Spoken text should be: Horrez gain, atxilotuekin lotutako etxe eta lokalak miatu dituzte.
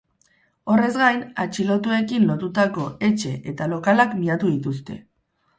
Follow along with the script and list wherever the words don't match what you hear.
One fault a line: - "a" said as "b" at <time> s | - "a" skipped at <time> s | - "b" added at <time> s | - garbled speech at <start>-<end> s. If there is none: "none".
none